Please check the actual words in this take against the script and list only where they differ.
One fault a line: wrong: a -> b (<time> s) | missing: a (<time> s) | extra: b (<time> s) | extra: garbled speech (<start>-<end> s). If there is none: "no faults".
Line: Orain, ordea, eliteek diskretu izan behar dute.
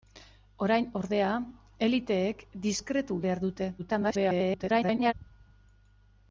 missing: izan (3.2 s)
extra: garbled speech (3.8-5.1 s)